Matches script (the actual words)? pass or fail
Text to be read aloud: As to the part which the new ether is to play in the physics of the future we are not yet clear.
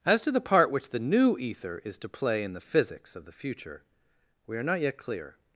pass